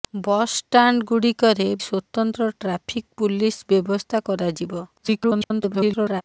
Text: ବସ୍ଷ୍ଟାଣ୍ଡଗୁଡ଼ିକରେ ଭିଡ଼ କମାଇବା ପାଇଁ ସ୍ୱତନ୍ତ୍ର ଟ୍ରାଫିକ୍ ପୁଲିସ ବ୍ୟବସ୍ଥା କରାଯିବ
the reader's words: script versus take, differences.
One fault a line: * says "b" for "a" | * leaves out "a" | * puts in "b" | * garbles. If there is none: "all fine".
* leaves out "ଭିଡ଼ କମାଇବା ପାଇଁ"
* garbles